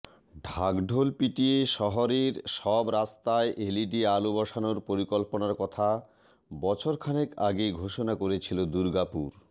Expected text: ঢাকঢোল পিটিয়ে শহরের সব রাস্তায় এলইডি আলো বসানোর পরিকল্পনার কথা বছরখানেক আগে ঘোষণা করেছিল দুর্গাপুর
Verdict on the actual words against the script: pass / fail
pass